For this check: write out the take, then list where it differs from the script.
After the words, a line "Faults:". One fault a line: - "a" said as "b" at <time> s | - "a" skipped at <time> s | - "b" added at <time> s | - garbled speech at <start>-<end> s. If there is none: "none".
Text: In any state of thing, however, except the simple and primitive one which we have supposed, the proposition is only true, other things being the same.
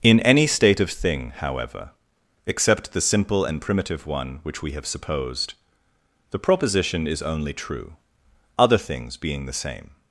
In any state of thing, however, except the simple and primitive one which we have supposed, the proposition is only true, other things being the same.
Faults:
none